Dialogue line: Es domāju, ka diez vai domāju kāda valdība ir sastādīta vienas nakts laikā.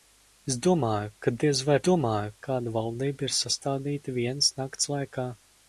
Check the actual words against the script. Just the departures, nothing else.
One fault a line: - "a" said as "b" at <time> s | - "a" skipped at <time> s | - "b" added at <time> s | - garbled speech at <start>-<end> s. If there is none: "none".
none